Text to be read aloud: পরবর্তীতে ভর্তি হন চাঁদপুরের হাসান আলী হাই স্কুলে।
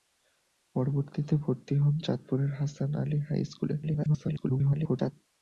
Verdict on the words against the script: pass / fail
fail